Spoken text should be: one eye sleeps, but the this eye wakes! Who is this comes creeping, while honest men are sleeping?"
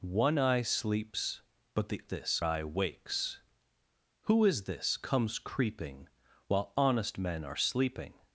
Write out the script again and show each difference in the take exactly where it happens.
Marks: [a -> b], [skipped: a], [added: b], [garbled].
one eye sleeps, but the this eye wakes! Who is this comes creeping, while honest men are sleeping?"